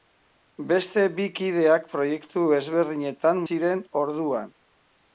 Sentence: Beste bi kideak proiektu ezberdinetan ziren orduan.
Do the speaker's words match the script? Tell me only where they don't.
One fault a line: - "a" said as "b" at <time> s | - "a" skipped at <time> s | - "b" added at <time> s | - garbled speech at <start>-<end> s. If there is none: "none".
none